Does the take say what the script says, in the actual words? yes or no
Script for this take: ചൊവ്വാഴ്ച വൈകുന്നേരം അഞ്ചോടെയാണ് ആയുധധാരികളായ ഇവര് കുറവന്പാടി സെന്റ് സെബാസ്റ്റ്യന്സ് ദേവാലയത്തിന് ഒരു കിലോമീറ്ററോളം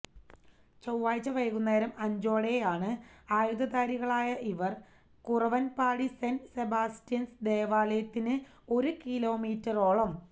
yes